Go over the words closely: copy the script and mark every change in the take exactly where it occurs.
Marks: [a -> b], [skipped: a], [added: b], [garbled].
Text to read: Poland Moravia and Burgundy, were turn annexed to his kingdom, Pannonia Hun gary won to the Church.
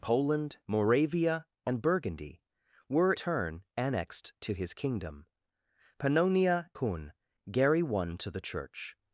Poland Moravia and Burgundy, were turn annexed to his kingdom, Pannonia Hun gary won to the Church.